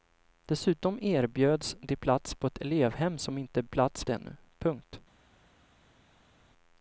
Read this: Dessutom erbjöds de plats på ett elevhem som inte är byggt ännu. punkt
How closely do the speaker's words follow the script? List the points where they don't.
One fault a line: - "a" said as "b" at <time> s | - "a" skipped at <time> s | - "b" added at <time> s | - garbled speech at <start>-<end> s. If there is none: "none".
- "byggt" said as "plats" at 3.6 s